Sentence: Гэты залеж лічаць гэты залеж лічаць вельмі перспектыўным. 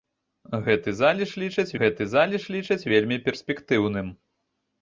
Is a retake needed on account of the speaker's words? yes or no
no